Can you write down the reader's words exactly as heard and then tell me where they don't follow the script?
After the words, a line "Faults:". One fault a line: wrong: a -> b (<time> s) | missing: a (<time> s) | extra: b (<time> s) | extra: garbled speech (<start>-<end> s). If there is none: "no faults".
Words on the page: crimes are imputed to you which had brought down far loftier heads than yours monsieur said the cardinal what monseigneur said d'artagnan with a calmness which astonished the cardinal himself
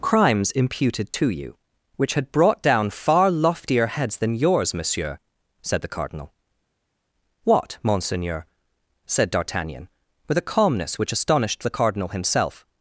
crimes imputed to you which had brought down far loftier heads than yours monsieur said the cardinal what monseigneur said d'artagnan with a calmness which astonished the cardinal himself
Faults:
missing: are (0.5 s)